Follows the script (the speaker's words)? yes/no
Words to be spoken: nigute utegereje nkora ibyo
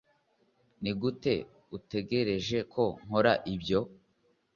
no